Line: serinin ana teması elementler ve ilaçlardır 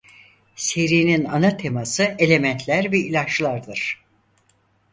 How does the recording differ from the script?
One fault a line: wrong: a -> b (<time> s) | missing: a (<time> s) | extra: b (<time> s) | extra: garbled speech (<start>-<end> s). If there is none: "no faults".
no faults